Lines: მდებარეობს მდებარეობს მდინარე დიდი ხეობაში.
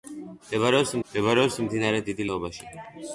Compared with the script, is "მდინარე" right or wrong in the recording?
right